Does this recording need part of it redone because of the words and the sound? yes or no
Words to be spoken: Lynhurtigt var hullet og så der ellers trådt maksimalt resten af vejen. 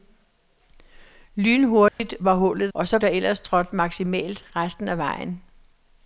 yes